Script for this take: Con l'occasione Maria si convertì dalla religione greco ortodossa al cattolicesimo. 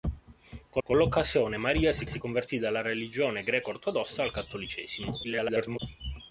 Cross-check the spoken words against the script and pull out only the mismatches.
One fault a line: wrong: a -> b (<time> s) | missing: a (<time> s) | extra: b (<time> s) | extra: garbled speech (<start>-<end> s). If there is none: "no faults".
extra: con (0.8 s)
extra: si (2.1 s)
extra: garbled speech (5.2-5.8 s)